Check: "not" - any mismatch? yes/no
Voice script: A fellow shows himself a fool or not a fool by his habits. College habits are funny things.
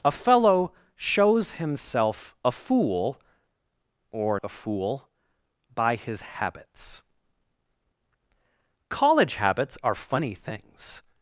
yes